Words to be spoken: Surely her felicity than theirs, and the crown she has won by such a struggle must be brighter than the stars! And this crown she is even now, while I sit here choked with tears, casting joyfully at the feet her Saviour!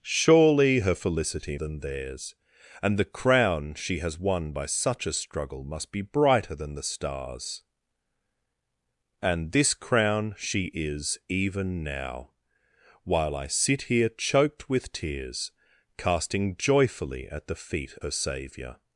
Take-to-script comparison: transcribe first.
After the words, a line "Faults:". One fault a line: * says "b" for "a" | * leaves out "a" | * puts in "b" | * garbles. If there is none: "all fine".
Surely her felicity than theirs, and the crown she has won by such a struggle must be brighter than the stars! And this crown she is even now, while I sit here choked with tears, casting joyfully at the feet her Saviour!
Faults:
all fine